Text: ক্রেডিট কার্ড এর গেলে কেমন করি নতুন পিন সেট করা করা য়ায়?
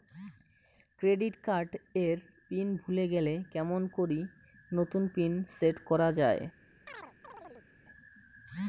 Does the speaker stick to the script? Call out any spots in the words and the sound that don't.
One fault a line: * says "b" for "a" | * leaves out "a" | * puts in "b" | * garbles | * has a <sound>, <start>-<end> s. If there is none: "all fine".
* puts in "পিন ভুলে"
* leaves out "করা"
* has a chirp, 6.9-7.7 s